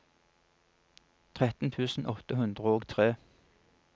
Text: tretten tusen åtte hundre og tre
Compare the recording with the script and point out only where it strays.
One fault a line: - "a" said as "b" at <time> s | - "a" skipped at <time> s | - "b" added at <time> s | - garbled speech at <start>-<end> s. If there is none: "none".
none